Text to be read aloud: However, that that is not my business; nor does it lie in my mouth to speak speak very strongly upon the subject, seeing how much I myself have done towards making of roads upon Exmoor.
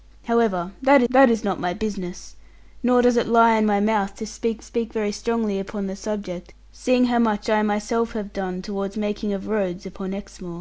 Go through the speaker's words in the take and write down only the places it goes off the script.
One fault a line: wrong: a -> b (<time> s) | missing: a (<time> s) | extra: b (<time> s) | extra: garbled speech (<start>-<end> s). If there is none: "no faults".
no faults